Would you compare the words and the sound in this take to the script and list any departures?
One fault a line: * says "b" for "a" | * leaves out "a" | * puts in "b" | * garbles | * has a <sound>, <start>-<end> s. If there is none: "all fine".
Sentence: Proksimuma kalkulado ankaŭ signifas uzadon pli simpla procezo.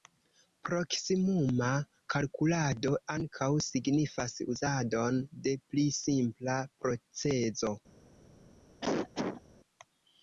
* puts in "de"
* has a cough, 8.8-9.4 s